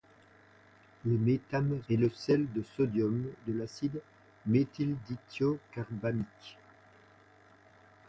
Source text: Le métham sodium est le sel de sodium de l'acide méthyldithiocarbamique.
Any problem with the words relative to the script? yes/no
yes